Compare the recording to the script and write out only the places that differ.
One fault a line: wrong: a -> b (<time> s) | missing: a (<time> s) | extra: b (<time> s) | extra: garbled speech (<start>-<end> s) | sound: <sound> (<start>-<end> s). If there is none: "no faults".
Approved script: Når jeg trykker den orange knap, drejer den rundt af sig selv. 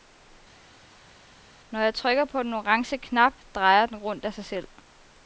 extra: på (2.2 s)